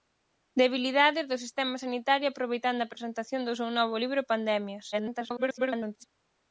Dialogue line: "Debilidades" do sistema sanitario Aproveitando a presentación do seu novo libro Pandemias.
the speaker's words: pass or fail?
fail